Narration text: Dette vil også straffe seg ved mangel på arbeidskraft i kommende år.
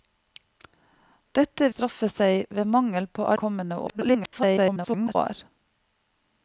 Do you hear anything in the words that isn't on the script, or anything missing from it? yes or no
yes